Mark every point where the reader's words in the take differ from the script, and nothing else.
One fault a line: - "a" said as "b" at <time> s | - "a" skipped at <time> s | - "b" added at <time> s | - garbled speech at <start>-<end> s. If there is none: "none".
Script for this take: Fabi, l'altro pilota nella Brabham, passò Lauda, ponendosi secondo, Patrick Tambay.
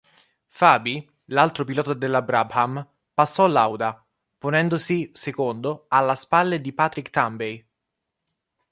- "nella" said as "della" at 1.9 s
- "alla spalle di" added at 5.9 s